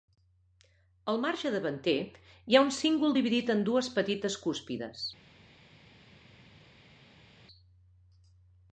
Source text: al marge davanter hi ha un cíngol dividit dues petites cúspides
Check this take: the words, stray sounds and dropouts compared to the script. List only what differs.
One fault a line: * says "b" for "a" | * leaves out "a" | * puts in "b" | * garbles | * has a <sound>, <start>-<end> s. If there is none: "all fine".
* puts in "en"